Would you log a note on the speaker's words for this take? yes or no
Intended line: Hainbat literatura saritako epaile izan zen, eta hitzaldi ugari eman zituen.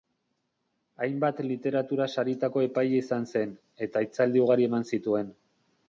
no